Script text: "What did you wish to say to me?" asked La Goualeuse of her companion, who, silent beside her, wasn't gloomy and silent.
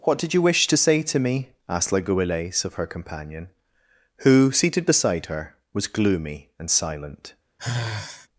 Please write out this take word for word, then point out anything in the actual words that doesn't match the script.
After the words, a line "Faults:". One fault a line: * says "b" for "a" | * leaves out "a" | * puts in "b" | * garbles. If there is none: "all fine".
"What did you wish to say to me?" asked La Goualeuse of her companion, who, seated beside her, was gloomy and silent.
Faults:
* says "seated" for "silent"
* says "was" for "wasn't"